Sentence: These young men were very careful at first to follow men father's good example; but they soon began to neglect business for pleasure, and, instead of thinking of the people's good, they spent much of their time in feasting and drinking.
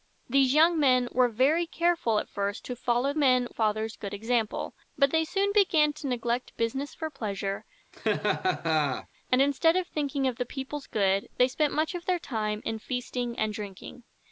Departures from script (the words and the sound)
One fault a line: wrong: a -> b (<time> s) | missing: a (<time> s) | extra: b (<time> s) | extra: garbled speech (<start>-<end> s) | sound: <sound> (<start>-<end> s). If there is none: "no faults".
sound: laugh (7.9-9.1 s)